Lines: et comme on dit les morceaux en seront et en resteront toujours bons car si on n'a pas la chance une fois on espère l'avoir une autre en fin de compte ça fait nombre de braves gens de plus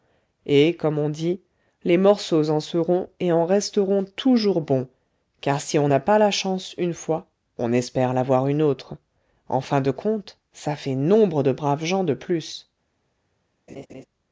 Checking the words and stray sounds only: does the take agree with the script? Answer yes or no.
no